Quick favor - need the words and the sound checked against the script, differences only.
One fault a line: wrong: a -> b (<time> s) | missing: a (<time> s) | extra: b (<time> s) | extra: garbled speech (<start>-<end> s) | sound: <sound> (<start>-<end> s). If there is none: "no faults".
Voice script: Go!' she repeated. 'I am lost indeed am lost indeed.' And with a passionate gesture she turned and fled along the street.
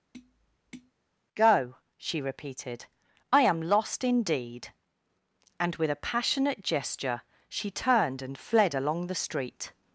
sound: tap (0.1-0.9 s)
missing: am lost indeed (4.7 s)